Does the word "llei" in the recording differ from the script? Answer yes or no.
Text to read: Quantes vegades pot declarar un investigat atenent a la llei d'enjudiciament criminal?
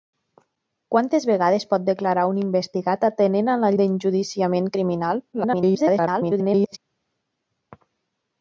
yes